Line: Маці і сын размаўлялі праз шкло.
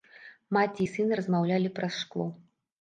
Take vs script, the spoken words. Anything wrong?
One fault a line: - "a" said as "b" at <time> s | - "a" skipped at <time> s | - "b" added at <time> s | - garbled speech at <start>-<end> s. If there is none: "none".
none